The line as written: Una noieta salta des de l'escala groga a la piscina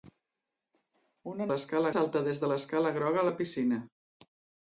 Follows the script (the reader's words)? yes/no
no